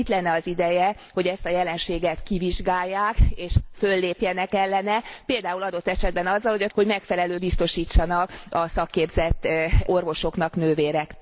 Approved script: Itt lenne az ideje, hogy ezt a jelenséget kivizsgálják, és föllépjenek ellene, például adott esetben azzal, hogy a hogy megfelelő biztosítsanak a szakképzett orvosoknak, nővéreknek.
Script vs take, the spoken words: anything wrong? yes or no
no